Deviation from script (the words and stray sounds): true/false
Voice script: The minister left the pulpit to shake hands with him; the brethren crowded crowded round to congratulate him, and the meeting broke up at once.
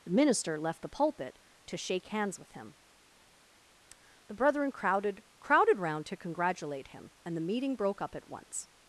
false